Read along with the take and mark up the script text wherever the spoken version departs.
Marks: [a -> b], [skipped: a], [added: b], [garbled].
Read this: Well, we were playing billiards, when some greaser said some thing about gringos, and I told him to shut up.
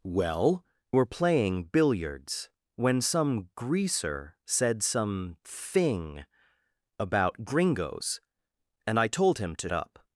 Well, [skipped: we] were playing billiards, when some greaser said some thing about gringos, and I told him to [skipped: shut] up.